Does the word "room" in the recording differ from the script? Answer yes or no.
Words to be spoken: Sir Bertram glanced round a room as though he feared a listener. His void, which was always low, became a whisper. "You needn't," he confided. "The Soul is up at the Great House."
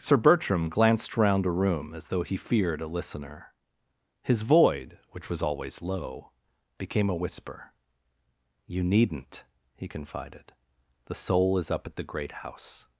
no